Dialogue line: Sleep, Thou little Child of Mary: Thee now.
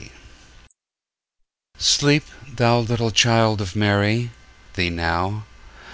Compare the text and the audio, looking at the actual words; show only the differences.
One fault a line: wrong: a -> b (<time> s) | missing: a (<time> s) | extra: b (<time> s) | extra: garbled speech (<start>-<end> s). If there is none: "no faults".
no faults